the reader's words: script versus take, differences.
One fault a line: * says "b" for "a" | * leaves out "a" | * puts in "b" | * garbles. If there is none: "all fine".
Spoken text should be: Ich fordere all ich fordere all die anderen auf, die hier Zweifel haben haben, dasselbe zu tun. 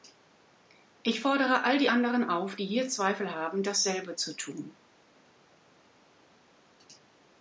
* leaves out "ich fordere all"
* leaves out "haben"